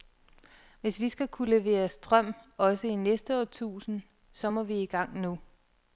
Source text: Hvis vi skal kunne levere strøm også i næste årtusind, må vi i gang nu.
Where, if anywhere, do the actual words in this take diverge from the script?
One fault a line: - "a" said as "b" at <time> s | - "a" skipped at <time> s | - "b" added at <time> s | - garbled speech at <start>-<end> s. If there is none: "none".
- "så" added at 4.3 s